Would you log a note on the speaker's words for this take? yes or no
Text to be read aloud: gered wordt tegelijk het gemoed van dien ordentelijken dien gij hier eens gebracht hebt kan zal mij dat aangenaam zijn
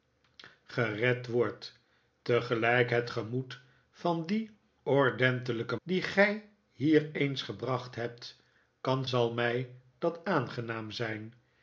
no